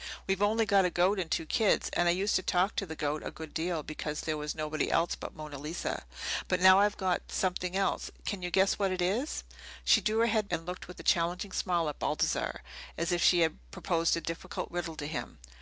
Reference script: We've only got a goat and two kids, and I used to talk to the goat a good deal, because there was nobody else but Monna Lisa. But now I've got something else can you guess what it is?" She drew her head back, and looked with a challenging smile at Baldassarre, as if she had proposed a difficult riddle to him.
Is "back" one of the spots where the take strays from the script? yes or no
yes